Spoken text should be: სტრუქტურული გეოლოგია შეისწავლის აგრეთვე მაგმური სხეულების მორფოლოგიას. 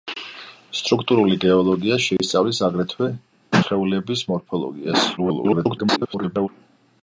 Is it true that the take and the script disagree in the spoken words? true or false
true